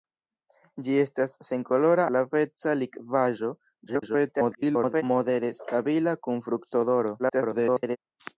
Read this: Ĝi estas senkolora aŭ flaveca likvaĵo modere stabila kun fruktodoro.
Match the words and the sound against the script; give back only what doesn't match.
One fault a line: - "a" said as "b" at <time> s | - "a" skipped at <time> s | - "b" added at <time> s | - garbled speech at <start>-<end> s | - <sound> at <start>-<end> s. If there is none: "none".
- "aŭ" skipped at 2.1 s
- garbled speech at 3.9-5.0 s
- garbled speech at 7.2-8.0 s